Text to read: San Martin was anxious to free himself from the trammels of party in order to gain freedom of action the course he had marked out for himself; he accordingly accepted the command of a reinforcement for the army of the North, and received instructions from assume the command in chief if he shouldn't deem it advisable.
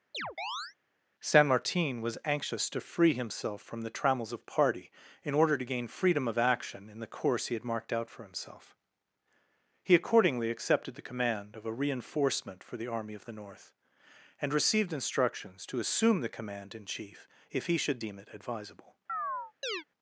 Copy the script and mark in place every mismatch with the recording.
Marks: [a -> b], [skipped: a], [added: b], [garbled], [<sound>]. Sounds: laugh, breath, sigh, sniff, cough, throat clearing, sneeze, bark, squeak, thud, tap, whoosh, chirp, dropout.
[chirp] San Martin was anxious to free himself from the trammels of party in order to gain freedom of action [added: in] the course he had marked out for himself; he accordingly accepted the command of a reinforcement for the army of the North, and received instructions [from -> to] assume the command in chief if he [shouldn't -> should] deem it advisable. [chirp]